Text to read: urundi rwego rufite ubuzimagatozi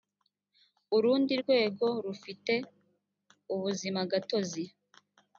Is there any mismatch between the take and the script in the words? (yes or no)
no